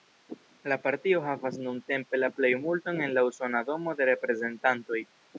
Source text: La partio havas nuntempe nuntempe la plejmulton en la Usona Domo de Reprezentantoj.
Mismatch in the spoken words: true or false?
true